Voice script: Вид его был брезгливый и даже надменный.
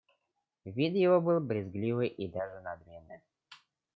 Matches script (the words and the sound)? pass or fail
pass